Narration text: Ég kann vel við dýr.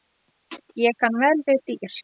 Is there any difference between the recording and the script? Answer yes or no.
no